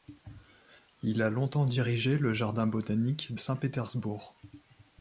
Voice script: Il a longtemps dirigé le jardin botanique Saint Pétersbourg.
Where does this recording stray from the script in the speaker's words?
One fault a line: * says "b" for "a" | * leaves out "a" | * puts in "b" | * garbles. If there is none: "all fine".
all fine